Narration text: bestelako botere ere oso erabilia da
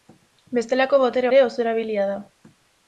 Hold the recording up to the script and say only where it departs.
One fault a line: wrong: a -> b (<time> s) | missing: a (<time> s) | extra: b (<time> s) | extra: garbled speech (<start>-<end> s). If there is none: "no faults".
no faults